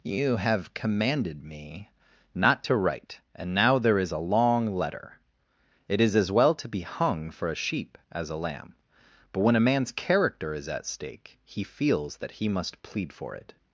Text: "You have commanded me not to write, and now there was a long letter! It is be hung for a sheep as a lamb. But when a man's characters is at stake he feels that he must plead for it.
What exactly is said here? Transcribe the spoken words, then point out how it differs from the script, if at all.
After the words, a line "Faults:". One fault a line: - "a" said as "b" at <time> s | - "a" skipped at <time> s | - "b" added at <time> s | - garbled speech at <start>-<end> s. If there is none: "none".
"You have commanded me not to write, and now there is a long letter! It is as well to be hung for a sheep as a lamb. But when a man's character is at stake he feels that he must plead for it.
Faults:
- "was" said as "is" at 4.0 s
- "as well to" added at 6.2 s
- "characters" said as "character" at 9.9 s